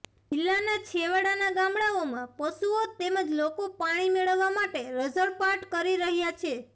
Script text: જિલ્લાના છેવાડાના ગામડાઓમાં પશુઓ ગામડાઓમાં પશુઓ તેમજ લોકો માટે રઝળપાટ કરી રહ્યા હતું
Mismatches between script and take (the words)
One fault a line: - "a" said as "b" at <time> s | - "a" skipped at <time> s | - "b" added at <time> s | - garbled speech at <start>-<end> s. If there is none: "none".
- "ગામડાઓમાં પશુઓ તેમજ લોકો" said as "તેમજ લોકો પાણી મેળવવા" at 3.0 s
- "હતું" said as "છે" at 6.4 s